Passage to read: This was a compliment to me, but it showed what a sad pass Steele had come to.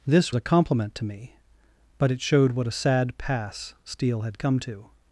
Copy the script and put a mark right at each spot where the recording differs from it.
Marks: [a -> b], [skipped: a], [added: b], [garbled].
This [skipped: was] a compliment to me, but it showed what a sad pass Steele had come to.